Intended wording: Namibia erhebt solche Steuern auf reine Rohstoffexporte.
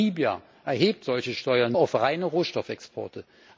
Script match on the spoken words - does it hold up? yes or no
yes